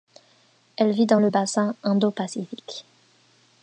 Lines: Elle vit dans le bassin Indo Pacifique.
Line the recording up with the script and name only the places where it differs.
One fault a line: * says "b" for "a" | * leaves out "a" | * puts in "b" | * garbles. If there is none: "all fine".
all fine